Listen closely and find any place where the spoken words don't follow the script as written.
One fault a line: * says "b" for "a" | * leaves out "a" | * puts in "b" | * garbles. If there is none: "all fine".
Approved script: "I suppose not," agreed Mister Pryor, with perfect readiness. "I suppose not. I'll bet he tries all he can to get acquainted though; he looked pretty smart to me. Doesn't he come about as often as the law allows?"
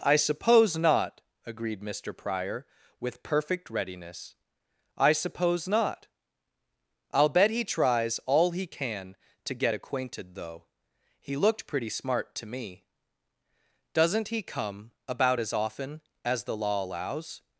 all fine